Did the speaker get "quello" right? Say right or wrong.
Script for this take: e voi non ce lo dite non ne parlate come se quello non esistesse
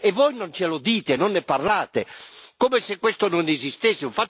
wrong